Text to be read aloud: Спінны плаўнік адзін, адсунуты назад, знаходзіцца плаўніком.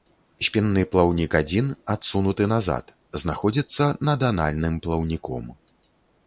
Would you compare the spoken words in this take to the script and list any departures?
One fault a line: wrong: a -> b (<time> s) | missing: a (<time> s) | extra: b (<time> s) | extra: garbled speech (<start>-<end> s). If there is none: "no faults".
extra: над анальным (4.1 s)